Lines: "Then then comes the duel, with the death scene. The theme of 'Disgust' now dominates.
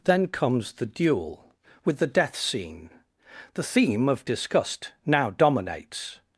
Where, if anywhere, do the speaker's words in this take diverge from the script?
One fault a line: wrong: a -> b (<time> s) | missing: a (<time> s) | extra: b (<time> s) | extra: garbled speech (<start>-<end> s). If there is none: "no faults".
missing: then (0.3 s)